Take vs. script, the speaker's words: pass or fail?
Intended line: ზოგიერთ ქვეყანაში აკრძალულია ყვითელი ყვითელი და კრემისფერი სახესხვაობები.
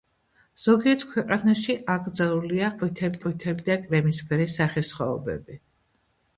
pass